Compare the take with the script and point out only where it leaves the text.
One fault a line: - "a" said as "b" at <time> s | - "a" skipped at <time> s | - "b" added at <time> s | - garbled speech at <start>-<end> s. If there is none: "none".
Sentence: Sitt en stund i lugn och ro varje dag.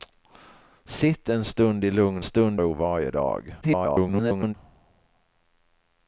- "och" said as "stund" at 2.2 s
- garbled speech at 3.6-4.5 s